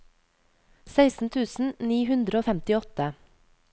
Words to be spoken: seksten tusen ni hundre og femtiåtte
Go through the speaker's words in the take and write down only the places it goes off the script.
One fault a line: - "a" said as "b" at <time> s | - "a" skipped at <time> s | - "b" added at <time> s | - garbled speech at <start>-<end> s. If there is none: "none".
none